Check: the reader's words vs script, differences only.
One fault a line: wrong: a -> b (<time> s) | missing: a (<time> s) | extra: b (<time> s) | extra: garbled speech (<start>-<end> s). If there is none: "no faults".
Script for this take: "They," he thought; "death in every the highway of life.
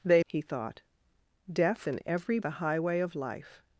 no faults